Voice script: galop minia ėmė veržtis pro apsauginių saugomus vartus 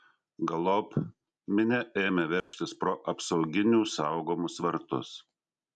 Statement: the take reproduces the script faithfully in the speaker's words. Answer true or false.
true